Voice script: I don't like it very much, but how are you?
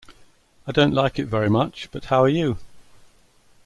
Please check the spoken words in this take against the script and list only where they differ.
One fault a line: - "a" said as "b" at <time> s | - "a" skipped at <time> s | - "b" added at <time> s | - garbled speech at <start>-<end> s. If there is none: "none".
none